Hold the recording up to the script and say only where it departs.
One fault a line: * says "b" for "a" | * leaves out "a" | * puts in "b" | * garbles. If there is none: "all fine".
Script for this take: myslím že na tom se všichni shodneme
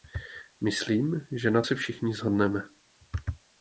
* leaves out "tom"